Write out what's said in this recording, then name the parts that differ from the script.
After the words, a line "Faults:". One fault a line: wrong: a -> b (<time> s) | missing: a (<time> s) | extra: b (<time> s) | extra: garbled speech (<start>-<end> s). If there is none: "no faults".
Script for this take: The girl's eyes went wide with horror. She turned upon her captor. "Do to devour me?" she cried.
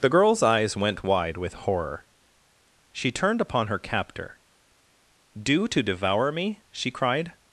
The girl's eyes went wide with horror. She turned upon her captor. "Do to devour me?" she cried.
Faults:
no faults